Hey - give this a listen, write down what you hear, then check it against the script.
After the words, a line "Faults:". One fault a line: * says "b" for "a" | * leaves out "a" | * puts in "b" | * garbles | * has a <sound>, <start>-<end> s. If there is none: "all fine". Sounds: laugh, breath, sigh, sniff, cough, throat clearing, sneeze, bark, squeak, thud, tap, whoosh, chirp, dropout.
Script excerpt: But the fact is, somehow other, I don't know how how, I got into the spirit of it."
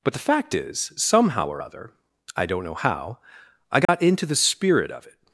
But the fact is, somehow or other, I don't know how, I got into the spirit of it."
Faults:
* puts in "or"
* leaves out "how"
* has a dropout, 3.8-3.9 s